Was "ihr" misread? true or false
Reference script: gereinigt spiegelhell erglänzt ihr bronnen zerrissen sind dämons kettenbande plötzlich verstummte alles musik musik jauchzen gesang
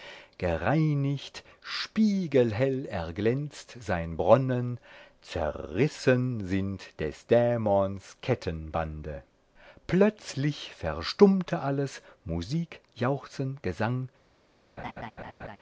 true